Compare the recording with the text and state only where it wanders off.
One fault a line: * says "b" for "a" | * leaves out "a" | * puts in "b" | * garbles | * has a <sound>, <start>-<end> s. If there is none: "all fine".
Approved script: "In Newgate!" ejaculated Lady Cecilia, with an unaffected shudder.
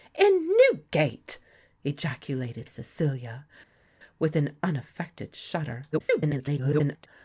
* leaves out "Lady"
* garbles